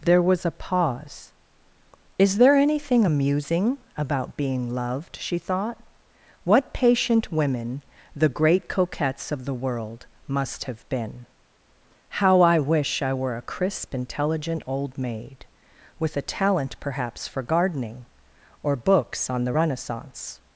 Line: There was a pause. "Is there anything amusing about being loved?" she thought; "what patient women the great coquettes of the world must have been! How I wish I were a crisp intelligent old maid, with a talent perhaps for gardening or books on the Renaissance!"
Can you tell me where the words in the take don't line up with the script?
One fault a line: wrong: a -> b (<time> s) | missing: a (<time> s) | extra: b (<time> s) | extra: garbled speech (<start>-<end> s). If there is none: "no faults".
no faults